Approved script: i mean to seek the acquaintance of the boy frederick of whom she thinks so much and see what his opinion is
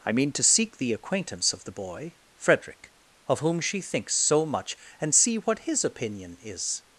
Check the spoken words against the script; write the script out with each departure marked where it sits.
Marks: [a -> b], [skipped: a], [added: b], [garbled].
i mean to seek the acquaintance of the boy frederick of whom she thinks so much and see what his opinion is